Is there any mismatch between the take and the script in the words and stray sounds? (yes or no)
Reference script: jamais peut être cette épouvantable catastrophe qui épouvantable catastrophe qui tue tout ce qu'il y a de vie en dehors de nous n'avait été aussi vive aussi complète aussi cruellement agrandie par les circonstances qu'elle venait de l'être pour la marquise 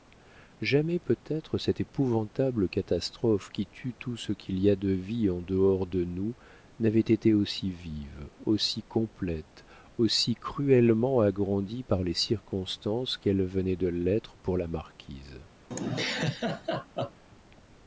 yes